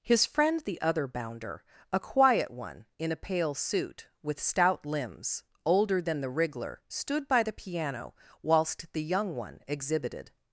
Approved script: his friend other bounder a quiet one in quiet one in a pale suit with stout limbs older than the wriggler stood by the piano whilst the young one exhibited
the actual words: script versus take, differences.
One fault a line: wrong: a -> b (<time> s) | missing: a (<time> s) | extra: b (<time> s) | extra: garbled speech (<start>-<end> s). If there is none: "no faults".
extra: the (0.6 s)
missing: quiet one in (3.1 s)